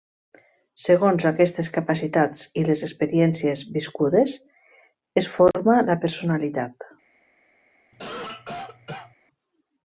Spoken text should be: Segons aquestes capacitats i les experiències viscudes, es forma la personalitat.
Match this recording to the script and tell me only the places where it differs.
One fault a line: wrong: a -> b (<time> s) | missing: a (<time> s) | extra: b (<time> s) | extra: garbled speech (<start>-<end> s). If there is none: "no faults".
no faults